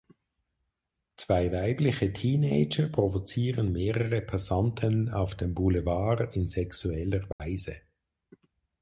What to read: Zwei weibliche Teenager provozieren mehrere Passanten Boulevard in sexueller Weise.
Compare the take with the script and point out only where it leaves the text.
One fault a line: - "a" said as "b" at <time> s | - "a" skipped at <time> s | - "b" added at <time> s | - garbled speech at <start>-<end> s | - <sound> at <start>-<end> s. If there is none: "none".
- "auf dem" added at 5.1 s
- dropout at 7.3-7.4 s